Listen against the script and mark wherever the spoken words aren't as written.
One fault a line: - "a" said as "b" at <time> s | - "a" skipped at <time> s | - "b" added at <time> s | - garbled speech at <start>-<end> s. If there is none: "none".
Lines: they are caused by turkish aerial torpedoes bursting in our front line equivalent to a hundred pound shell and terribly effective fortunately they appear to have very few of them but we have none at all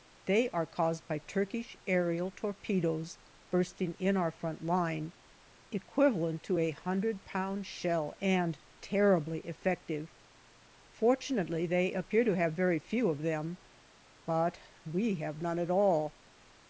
none